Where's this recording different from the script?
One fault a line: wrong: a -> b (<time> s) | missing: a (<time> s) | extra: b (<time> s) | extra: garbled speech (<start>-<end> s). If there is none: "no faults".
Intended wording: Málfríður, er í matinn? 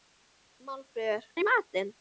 no faults